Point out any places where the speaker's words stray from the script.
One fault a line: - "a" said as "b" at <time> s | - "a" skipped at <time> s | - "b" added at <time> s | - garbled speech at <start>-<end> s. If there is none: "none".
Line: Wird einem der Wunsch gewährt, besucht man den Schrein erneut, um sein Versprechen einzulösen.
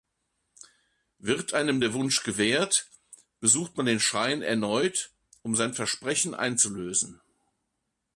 none